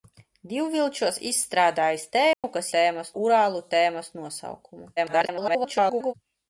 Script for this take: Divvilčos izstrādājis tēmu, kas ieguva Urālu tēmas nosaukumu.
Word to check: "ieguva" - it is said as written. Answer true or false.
false